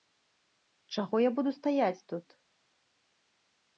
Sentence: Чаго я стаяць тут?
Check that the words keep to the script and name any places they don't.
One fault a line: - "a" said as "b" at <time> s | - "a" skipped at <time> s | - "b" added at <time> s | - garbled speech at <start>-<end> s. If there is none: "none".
- "буду" added at 1.4 s